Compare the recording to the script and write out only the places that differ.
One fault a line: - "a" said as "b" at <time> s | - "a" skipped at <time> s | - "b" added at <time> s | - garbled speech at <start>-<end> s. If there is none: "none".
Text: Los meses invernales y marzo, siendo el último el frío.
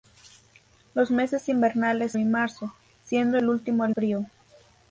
none